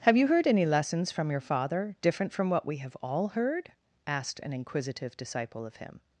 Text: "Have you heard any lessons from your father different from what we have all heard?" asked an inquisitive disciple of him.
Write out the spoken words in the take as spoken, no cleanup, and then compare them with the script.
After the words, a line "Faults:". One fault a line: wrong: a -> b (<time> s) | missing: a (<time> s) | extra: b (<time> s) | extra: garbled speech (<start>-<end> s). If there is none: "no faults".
"Have you heard any lessons from your father different from what we have all heard?" asked an inquisitive disciple of him.
Faults:
no faults